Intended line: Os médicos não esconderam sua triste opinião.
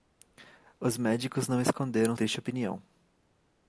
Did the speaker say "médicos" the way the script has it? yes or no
yes